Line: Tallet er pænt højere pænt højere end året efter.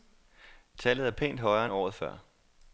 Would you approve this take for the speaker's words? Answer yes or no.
no